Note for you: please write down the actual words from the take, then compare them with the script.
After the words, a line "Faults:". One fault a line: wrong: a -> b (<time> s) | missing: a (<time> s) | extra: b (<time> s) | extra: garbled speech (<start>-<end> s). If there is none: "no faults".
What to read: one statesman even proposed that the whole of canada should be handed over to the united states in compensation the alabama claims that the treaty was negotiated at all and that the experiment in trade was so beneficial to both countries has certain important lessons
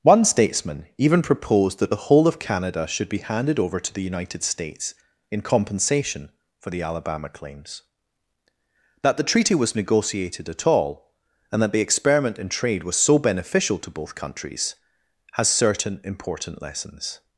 one statesman even proposed that the whole of canada should be handed over to the united states in compensation for the alabama claims that the treaty was negotiated at all and that the experiment in trade was so beneficial to both countries has certain important lessons
Faults:
extra: for (6.6 s)